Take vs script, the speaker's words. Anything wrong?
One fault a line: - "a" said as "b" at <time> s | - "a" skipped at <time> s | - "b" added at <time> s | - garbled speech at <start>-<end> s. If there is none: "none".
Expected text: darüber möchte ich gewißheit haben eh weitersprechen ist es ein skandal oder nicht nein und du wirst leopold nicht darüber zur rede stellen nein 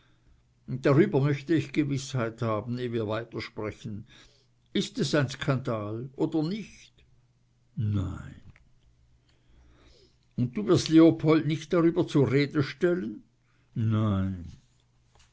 - "wir" added at 2.9 s